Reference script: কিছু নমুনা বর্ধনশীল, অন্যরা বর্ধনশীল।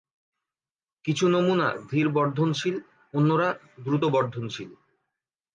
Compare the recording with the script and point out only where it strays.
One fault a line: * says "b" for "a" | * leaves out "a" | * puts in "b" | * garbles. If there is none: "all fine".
* puts in "ধীর"
* puts in "দ্রুত"